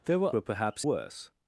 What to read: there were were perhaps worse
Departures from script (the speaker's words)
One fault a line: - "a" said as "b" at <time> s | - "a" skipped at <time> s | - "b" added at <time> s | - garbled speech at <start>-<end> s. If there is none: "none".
none